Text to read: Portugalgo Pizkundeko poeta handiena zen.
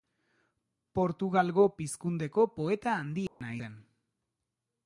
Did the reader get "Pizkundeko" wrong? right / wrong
right